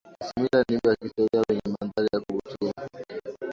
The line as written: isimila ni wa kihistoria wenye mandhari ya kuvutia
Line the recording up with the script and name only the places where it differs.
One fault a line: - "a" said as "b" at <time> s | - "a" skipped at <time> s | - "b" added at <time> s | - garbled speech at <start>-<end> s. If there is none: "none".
none